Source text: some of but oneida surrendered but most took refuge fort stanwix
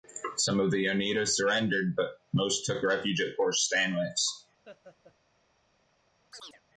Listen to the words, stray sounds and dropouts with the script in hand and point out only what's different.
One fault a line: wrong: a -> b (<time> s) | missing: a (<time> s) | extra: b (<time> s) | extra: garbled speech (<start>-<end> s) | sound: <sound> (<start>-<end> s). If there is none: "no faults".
wrong: but -> the (0.7 s)
extra: at (3.2 s)
sound: laugh (4.6-5.2 s)
sound: chirp (6.3-6.6 s)